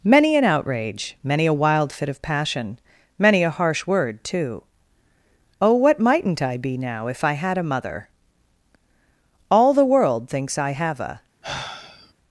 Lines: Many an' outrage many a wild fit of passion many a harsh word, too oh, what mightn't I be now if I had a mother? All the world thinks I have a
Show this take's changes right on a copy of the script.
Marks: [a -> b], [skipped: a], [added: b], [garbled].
Many an' outrage many a wild fit of passion many a harsh word, too oh, what mightn't I be now if I had a mother? All the world thinks I have a